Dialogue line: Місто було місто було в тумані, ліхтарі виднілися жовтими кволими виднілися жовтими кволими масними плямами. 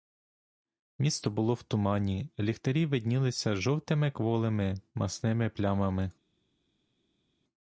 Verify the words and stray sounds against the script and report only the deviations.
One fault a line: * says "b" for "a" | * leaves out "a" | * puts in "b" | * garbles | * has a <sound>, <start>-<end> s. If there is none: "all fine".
* leaves out "місто було"
* leaves out "виднілися жовтими кволими"